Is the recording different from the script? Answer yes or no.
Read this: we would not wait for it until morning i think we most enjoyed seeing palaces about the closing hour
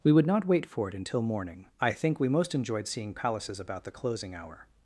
no